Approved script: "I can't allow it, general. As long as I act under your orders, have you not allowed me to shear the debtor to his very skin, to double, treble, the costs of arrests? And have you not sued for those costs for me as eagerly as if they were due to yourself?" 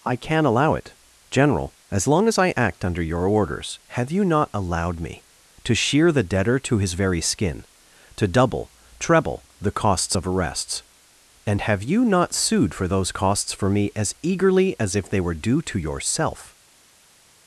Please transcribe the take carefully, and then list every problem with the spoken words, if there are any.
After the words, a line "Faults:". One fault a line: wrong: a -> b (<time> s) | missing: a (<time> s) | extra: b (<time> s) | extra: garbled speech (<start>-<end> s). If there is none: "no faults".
"I can allow it, general. As long as I act under your orders, have you not allowed me to shear the debtor to his very skin, to double, treble, the costs of arrests? And have you not sued for those costs for me as eagerly as if they were due to yourself?"
Faults:
wrong: can't -> can (0.1 s)